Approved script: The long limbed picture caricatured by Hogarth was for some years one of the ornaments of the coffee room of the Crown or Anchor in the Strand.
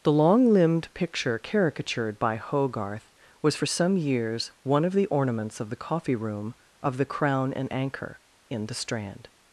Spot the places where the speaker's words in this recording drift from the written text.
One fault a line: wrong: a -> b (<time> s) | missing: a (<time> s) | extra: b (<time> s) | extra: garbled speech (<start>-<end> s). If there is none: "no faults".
wrong: or -> and (7.5 s)